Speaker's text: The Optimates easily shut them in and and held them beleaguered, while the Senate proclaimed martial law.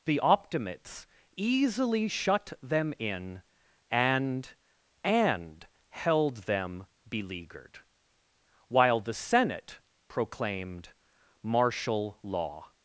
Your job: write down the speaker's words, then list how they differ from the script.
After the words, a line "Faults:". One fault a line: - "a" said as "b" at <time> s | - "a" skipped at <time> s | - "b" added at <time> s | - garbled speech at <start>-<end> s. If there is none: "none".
The Optimates easily shut them in and and held them beleaguered, while the Senate proclaimed martial law.
Faults:
none